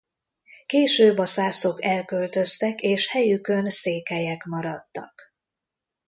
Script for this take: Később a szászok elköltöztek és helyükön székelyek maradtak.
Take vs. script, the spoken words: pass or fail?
pass